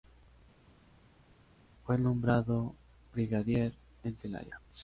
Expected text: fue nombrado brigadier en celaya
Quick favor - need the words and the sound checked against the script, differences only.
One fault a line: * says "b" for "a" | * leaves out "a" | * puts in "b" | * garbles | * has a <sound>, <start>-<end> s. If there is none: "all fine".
all fine